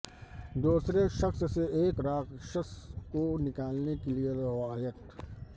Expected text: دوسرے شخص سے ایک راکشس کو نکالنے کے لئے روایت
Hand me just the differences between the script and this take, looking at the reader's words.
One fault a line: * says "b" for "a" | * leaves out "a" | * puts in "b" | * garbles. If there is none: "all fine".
all fine